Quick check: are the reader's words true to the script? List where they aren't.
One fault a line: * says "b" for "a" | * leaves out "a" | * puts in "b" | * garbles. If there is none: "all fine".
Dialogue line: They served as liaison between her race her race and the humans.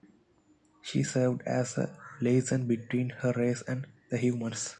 * says "She" for "They"
* puts in "a"
* leaves out "her race"